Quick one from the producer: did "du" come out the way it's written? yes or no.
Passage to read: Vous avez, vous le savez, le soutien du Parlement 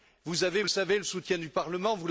yes